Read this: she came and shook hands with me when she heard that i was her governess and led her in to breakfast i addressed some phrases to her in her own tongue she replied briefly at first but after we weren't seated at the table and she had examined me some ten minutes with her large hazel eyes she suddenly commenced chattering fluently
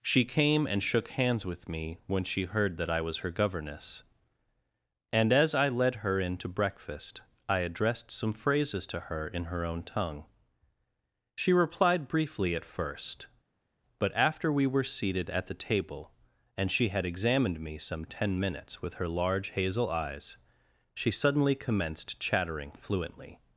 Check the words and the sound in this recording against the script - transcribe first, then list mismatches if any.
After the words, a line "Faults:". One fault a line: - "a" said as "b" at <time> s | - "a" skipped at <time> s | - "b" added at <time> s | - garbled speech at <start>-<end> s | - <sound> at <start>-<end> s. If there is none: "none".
she came and shook hands with me when she heard that i was her governess and as i led her in to breakfast i addressed some phrases to her in her own tongue she replied briefly at first but after we were seated at the table and she had examined me some ten minutes with her large hazel eyes she suddenly commenced chattering fluently
Faults:
- "as i" added at 5.3 s
- "weren't" said as "were" at 14.7 s